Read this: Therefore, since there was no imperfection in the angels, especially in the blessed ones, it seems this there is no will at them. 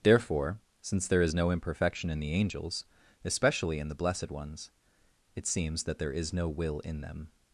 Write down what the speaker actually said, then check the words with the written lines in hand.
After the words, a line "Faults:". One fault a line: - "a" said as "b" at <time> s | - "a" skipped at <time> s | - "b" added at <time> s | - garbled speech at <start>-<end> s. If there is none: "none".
Therefore, since there is no imperfection in the angels, especially in the blessed ones, it seems that there is no will in them.
Faults:
- "was" said as "is" at 1.2 s
- "this" said as "that" at 5.8 s
- "at" said as "in" at 6.8 s